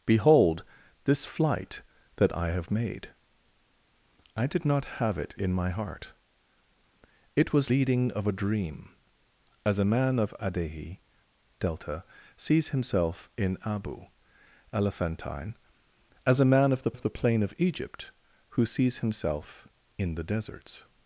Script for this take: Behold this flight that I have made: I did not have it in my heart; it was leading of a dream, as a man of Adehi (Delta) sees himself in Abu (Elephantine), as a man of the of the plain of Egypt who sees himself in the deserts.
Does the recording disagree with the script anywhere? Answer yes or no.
no